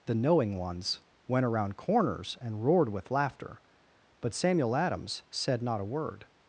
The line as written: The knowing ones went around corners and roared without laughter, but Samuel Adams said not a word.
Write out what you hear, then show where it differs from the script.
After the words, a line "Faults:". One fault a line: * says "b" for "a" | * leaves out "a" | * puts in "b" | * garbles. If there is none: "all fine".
The knowing ones went around corners and roared with laughter, but Samuel Adams said not a word.
Faults:
* says "with" for "without"